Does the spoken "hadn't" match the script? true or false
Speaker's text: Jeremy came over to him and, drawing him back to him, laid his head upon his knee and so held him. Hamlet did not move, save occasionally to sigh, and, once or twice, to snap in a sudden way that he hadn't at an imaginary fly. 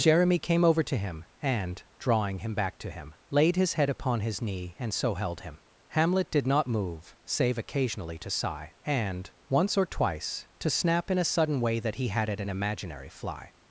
false